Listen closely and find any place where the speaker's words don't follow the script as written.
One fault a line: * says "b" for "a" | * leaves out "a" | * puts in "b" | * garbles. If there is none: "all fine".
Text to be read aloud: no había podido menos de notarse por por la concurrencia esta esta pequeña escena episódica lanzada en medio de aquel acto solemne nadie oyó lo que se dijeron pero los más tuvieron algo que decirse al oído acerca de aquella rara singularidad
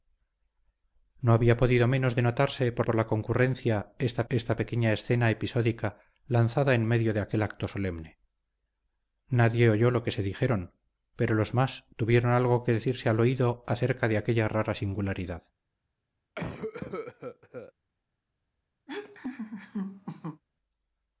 all fine